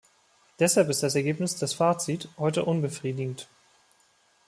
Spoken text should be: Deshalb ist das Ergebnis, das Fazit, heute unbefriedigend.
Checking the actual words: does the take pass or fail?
pass